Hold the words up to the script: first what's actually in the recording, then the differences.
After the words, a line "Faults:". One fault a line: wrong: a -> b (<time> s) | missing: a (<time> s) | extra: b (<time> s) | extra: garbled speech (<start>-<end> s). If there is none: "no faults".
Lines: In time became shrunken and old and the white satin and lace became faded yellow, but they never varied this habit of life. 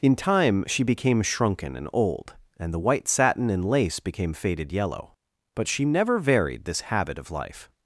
In time she became shrunken and old and the white satin and lace became faded yellow, but she never varied this habit of life.
Faults:
extra: she (0.7 s)
wrong: they -> she (5.7 s)